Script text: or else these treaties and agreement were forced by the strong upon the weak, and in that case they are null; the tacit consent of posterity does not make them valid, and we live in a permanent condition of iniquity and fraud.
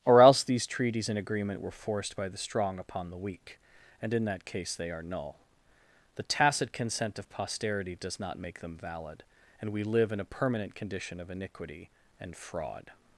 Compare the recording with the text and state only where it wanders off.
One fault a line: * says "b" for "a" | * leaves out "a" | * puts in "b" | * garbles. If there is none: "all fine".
all fine